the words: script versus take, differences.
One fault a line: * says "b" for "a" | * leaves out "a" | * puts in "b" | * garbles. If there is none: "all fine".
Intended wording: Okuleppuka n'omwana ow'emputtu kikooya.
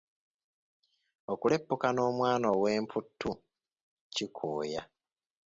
all fine